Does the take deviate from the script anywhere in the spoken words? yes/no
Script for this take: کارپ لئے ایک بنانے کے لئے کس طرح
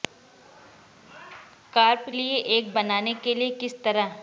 no